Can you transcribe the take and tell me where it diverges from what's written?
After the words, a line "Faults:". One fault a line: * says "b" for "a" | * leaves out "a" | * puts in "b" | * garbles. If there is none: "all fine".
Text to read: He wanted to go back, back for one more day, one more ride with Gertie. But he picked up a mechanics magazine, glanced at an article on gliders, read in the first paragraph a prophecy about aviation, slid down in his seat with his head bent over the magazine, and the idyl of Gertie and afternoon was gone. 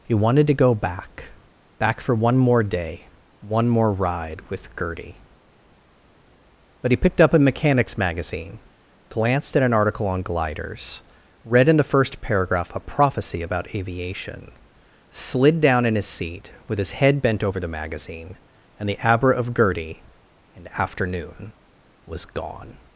He wanted to go back, back for one more day, one more ride with Gertie. But he picked up a mechanics magazine, glanced at an article on gliders, read in the first paragraph a prophecy about aviation, slid down in his seat with his head bent over the magazine, and the abra of Gertie and afternoon was gone.
Faults:
* says "abra" for "idyl"